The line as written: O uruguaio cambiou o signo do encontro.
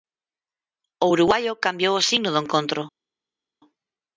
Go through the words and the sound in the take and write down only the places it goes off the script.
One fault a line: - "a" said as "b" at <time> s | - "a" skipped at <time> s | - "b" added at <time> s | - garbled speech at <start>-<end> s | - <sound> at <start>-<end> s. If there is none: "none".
none